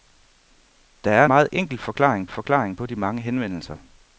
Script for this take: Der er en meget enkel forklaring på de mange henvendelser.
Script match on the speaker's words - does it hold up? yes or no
no